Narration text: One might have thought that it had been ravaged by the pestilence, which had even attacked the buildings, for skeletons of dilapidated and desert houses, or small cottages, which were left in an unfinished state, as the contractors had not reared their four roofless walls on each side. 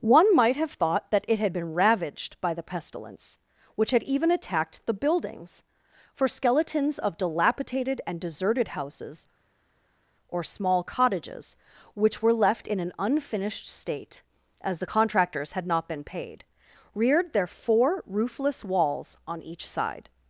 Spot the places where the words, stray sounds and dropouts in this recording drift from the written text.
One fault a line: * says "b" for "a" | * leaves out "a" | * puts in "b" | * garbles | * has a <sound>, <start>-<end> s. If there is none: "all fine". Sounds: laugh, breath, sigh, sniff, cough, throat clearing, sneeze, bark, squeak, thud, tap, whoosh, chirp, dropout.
* says "deserted" for "desert"
* puts in "been paid"